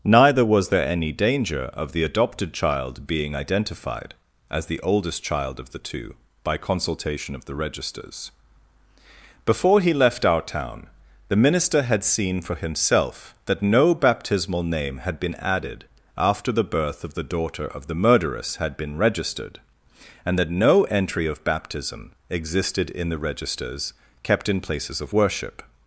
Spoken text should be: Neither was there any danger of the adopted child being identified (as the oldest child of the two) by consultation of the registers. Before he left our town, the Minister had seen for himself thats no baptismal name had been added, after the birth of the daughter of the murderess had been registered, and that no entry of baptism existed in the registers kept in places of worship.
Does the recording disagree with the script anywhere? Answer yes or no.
yes